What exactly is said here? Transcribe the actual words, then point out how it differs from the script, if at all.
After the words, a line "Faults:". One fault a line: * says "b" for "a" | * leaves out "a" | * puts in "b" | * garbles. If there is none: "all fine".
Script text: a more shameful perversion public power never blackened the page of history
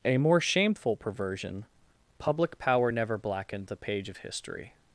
a more shameful perversion public power never blackened the page of history
Faults:
all fine